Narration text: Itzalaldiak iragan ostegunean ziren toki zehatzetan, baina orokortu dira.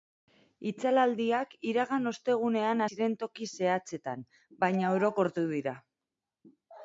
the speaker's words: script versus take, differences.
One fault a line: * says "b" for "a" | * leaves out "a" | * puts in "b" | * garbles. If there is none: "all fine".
all fine